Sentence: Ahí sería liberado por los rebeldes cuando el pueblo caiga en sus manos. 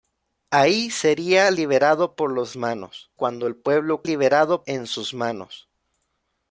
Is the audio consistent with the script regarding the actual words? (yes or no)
no